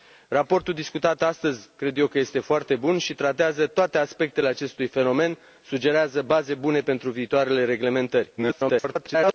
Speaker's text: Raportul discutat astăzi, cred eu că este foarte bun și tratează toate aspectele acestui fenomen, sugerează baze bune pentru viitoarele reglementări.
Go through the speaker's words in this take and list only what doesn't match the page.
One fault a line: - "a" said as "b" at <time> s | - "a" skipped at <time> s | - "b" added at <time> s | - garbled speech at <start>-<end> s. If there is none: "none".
- garbled speech at 8.4-9.3 s